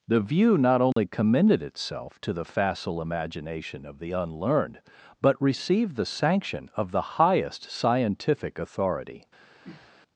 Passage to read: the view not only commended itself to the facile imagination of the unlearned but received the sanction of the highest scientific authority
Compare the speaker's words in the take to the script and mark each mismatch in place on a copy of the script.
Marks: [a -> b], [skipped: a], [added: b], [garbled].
the view not only commended itself to the facile imagination of the unlearned but received the sanction of the highest scientific authority